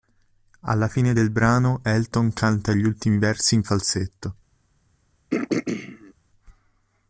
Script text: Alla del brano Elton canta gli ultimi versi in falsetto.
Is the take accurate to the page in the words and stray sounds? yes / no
no